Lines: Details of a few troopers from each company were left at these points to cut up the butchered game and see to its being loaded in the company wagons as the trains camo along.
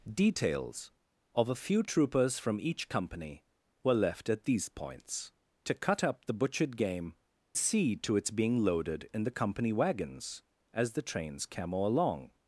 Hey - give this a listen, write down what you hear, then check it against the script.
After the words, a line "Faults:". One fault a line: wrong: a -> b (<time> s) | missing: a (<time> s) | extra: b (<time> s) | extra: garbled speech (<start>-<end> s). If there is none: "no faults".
Details of a few troopers from each company were left at these points to cut up the butchered game see to its being loaded in the company wagons as the trains camo along.
Faults:
missing: and (7.1 s)